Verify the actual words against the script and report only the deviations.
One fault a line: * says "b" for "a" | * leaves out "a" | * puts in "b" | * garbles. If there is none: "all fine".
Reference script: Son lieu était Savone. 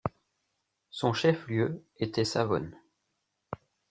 * puts in "chef"